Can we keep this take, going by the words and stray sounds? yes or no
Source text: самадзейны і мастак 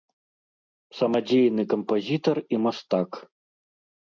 no